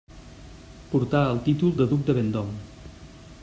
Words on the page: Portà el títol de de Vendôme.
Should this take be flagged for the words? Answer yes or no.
yes